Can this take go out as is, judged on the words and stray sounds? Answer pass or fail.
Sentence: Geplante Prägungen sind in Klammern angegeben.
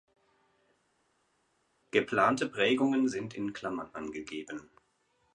pass